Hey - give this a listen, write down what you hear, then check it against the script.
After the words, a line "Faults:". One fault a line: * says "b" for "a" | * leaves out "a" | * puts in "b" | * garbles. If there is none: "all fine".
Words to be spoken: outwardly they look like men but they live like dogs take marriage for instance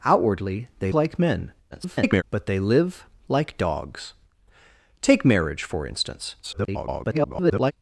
outwardly they like men [garbled] but they live like dogs take marriage for instance [garbled]
Faults:
* leaves out "look"
* garbles
* garbles